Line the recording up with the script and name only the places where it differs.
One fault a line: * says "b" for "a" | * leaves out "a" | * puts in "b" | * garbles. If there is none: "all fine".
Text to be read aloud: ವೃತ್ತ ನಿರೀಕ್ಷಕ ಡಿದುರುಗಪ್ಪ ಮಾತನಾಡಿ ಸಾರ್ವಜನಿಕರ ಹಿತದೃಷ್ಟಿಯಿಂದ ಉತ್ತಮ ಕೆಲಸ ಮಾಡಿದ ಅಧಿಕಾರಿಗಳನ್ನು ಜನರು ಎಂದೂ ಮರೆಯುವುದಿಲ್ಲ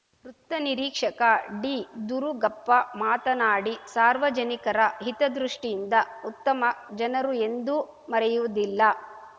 * leaves out "ಕೆಲಸ ಮಾಡಿದ ಅಧಿಕಾರಿಗಳನ್ನು"